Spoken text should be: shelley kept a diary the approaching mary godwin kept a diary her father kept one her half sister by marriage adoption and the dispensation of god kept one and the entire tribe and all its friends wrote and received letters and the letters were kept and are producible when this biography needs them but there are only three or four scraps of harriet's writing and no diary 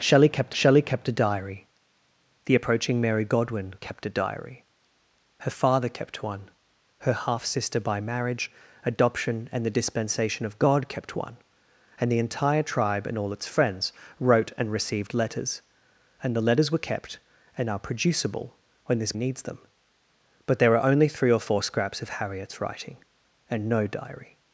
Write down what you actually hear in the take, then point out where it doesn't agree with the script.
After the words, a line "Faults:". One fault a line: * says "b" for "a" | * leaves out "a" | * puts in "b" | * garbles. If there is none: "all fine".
shelley kept shelley kept a diary the approaching mary godwin kept a diary her father kept one her half sister by marriage adoption and the dispensation of god kept one and the entire tribe and all its friends wrote and received letters and the letters were kept and are producible when this needs them but there are only three or four scraps of harriet's writing and no diary
Faults:
* puts in "shelley kept"
* leaves out "biography"